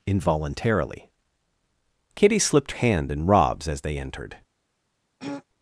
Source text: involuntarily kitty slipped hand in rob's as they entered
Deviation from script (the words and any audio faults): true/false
true